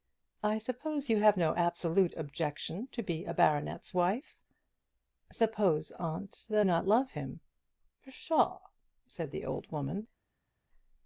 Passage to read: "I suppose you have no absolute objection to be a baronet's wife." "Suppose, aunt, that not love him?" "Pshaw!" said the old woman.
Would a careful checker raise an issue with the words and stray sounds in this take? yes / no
no